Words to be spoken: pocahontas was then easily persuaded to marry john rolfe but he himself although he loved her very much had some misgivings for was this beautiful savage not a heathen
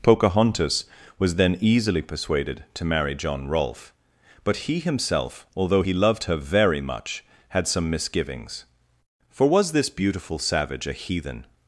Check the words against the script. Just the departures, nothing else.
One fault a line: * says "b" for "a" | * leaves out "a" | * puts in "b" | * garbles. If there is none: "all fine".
* leaves out "not"